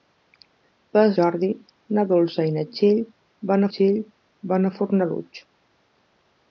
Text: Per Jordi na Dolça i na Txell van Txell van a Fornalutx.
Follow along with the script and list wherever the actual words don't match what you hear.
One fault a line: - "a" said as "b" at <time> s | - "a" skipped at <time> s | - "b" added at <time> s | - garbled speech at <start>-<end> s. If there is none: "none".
none